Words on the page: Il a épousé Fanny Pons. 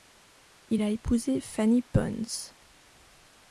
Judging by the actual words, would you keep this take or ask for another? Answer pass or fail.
pass